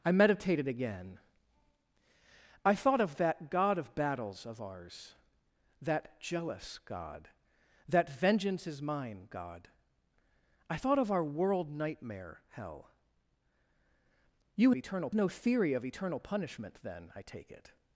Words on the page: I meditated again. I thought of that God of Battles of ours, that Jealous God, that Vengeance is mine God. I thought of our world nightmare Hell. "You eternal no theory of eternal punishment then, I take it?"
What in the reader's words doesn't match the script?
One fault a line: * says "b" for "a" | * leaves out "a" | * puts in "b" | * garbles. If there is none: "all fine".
all fine